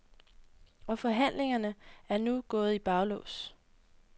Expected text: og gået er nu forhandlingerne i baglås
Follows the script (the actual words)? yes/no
no